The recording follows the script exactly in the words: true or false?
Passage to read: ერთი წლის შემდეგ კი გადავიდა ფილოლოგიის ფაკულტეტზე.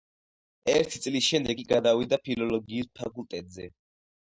true